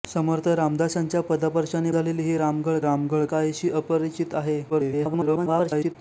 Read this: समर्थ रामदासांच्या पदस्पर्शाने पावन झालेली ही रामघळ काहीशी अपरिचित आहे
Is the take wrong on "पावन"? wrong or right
wrong